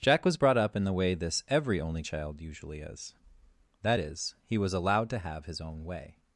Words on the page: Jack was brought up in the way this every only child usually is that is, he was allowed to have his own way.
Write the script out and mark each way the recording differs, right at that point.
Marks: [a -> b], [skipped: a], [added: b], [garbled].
Jack was brought up in the way this every only child usually is that is, he was allowed to have his own way.